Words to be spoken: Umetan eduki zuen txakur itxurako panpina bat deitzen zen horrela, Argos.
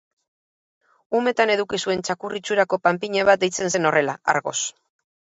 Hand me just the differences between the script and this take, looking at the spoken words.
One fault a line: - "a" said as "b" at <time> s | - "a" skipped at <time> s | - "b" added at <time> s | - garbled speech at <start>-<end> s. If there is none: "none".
none